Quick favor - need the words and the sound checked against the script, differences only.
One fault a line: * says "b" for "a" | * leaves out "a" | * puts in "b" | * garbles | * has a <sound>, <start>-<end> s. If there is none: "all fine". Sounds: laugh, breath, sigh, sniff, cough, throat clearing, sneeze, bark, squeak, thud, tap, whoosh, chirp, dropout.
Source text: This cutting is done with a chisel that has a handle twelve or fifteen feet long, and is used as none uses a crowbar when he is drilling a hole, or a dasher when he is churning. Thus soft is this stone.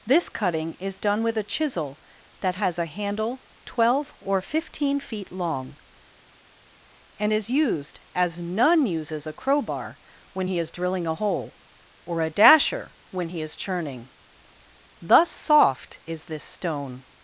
all fine